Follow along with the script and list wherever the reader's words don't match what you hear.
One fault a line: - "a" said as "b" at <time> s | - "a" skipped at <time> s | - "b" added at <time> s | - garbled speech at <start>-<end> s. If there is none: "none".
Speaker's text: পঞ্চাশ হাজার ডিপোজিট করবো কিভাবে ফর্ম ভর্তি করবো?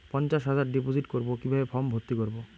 none